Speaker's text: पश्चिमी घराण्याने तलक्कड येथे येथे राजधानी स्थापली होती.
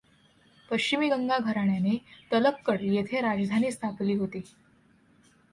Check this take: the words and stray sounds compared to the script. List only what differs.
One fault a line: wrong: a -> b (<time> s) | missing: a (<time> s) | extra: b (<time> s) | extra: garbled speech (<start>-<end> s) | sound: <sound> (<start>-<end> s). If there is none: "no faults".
extra: गंगा (1.1 s)
missing: येथे (3.2 s)